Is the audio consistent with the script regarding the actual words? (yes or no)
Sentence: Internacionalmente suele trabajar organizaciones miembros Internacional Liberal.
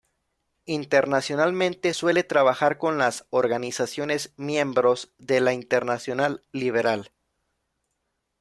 no